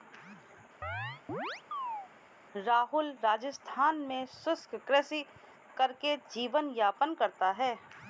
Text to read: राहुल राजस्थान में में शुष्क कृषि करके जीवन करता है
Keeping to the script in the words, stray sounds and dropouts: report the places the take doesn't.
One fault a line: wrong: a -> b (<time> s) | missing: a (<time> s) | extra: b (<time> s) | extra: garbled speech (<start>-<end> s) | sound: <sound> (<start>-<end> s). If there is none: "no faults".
sound: chirp (0.8-2.1 s)
missing: में (4.2 s)
extra: यापन (6.8 s)